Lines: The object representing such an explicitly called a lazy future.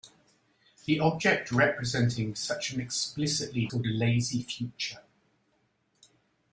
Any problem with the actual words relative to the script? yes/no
no